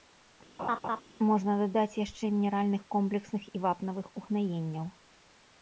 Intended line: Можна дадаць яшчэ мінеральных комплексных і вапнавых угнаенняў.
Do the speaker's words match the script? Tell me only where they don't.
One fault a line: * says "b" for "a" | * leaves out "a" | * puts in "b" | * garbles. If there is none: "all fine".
all fine